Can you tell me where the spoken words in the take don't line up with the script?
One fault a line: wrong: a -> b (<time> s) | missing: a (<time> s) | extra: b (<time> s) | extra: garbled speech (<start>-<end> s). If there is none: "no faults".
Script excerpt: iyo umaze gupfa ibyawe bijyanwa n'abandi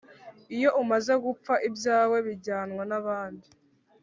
no faults